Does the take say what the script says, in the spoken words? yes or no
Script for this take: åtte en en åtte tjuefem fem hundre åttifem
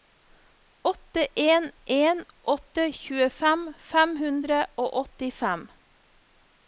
no